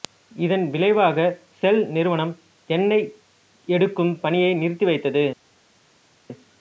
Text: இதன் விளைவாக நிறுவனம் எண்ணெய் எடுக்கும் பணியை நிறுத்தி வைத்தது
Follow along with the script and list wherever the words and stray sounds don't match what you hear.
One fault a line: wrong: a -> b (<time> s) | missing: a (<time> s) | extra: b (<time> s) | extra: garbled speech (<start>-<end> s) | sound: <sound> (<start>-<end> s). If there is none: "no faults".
extra: செல் (1.6 s)